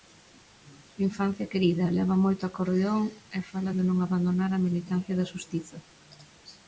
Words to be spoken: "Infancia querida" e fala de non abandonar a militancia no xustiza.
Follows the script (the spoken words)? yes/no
no